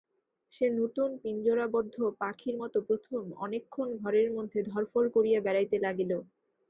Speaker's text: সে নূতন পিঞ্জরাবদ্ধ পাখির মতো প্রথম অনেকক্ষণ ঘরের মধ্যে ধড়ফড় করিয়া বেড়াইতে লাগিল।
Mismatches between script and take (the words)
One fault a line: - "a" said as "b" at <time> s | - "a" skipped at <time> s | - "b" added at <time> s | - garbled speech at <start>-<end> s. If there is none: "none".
none